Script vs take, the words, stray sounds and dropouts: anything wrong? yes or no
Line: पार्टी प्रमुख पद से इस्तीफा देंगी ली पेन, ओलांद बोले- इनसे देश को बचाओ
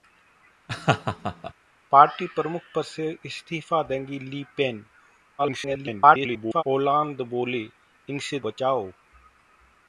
yes